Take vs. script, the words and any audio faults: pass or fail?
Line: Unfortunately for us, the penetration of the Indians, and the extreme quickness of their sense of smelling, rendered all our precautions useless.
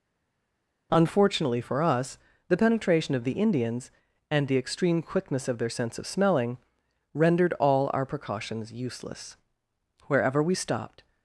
fail